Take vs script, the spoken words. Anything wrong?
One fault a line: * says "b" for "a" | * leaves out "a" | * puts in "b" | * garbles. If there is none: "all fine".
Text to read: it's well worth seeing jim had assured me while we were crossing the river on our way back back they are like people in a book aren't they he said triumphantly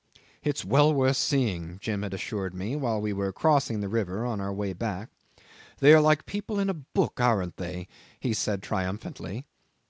* leaves out "back"